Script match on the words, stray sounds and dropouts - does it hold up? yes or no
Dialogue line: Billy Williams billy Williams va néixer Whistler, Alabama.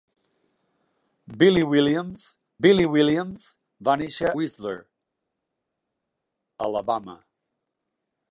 yes